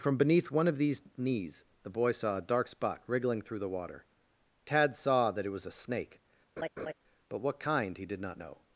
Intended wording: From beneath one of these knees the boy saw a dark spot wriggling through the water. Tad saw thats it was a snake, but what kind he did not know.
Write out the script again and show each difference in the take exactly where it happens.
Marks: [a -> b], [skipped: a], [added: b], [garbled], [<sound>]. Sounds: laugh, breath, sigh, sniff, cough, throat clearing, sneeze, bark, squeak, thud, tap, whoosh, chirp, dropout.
From beneath one of these knees the boy saw a dark spot wriggling through the water. Tad saw [thats -> that] it was a snake, [laugh] but what kind he did not know.